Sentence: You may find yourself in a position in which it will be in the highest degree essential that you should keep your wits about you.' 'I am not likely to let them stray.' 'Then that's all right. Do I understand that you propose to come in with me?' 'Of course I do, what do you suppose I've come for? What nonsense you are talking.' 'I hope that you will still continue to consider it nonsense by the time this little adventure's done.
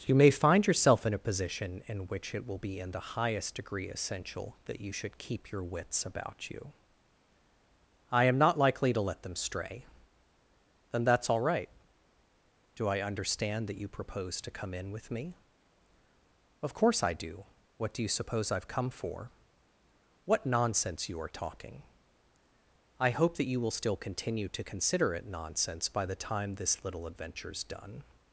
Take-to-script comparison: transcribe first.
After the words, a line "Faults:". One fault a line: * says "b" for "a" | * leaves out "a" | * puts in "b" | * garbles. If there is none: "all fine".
You may find yourself in a position in which it will be in the highest degree essential that you should keep your wits about you.' 'I am not likely to let them stray.' 'Then that's all right. Do I understand that you propose to come in with me?' 'Of course I do, what do you suppose I've come for? What nonsense you are talking.' 'I hope that you will still continue to consider it nonsense by the time this little adventure's done.
Faults:
all fine